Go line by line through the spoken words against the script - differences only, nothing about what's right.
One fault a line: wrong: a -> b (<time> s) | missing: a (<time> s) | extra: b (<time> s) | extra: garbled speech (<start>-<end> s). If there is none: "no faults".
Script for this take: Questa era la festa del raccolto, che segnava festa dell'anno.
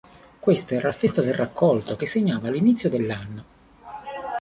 wrong: festa -> l'inizio (2.5 s)